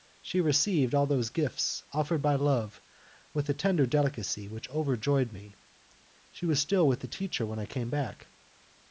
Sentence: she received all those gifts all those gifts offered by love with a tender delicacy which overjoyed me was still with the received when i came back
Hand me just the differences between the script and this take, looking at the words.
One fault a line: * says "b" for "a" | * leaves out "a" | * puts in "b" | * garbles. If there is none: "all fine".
* leaves out "all those gifts"
* puts in "she"
* says "teacher" for "received"